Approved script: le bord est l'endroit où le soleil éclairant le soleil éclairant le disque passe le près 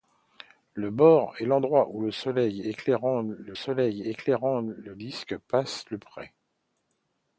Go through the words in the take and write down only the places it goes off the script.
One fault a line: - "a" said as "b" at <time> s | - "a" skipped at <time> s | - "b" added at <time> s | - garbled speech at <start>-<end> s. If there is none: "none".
none